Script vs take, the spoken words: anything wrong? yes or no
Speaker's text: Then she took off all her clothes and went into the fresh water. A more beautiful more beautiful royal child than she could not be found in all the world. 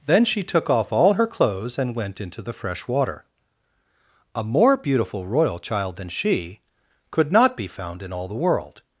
yes